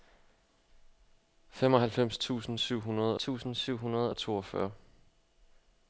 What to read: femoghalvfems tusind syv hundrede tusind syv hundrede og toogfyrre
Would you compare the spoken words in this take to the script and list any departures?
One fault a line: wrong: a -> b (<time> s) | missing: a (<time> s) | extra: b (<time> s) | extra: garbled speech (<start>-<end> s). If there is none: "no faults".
no faults